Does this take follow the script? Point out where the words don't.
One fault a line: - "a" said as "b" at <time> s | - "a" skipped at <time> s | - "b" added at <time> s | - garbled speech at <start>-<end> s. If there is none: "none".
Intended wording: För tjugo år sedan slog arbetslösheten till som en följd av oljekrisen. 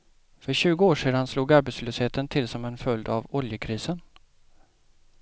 none